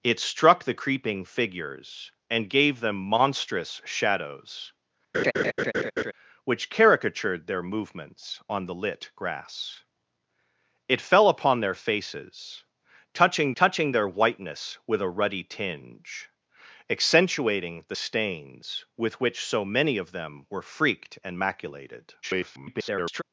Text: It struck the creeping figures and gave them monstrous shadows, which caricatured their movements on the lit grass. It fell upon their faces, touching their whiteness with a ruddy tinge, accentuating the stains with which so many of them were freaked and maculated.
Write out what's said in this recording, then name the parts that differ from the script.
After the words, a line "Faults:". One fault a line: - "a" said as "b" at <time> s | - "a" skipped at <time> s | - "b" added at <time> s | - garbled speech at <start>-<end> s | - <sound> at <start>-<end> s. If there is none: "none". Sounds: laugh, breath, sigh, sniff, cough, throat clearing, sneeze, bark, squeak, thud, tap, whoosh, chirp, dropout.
It struck the creeping figures and gave them monstrous shadows, which caricatured their movements on the lit grass. It fell upon their faces, touching touching their whiteness with a ruddy tinge, accentuating the stains with which so many of them were freaked and maculated. [garbled]
Faults:
- laugh at 5.1-6.1 s
- "touching" added at 13.6 s
- garbled speech at 22.2-23.2 s